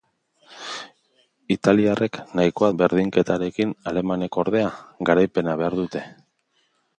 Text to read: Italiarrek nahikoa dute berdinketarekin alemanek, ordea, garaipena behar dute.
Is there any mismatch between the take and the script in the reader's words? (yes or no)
yes